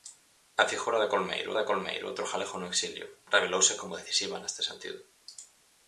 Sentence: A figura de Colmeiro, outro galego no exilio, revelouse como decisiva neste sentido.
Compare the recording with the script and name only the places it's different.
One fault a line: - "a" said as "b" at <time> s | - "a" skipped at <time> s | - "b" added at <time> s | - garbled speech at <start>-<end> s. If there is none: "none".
- "de Colmeiro" added at 1.6 s